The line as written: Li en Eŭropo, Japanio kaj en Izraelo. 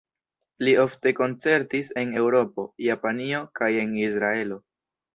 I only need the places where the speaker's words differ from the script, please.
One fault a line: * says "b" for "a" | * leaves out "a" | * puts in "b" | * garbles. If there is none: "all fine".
* puts in "ofte koncertis"